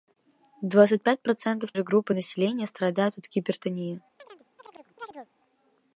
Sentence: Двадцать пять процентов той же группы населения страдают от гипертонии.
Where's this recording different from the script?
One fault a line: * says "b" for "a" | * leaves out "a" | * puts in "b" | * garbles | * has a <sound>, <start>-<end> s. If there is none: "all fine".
* leaves out "той"
* has a chirp, 4.2-5.3 s